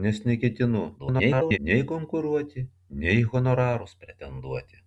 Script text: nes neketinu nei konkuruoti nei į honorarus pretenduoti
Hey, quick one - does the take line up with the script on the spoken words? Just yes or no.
no